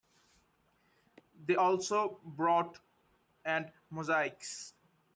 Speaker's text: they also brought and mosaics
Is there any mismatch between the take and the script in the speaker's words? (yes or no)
no